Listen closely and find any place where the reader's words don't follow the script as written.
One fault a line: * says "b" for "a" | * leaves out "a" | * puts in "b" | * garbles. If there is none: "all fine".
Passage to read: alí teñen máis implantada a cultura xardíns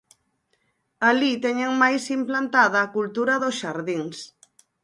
* puts in "dos"